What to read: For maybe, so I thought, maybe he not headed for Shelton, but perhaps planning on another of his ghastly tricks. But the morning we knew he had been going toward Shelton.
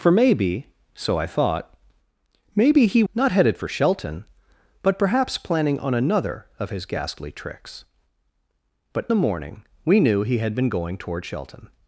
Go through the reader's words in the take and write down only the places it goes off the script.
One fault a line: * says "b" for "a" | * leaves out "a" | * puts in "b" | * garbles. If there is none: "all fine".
all fine